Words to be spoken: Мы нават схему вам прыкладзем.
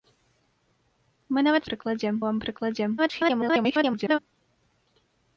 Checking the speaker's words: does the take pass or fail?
fail